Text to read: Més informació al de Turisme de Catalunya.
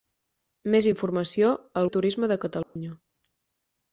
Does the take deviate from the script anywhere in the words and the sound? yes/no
yes